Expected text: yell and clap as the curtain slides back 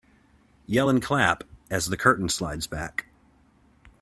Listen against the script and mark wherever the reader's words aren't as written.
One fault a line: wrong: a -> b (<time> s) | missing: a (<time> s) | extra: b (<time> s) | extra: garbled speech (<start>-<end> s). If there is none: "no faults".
no faults